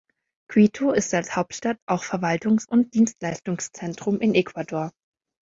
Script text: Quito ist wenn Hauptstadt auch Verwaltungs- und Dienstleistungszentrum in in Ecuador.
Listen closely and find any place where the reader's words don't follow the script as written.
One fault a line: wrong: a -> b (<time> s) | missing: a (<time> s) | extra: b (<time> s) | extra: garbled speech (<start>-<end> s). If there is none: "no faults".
wrong: wenn -> als (1.1 s)
missing: in (4.3 s)